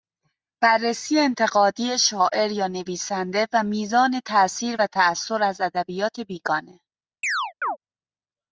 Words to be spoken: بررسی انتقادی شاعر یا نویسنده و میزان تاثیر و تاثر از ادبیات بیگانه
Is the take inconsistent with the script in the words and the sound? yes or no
yes